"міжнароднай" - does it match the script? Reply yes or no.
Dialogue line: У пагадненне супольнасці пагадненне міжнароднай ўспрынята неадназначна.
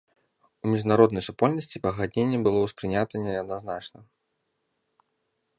no